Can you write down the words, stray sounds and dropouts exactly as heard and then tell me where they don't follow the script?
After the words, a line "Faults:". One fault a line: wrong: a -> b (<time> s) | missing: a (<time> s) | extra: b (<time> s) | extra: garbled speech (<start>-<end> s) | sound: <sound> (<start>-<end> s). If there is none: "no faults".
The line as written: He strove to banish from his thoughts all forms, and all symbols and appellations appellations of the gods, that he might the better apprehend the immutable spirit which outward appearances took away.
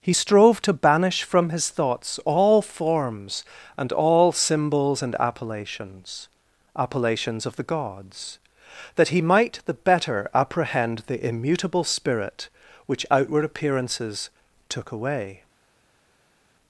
He strove to banish from his thoughts all forms, and all symbols and appellations appellations of the gods, that he might the better apprehend the immutable spirit which outward appearances took away.
Faults:
no faults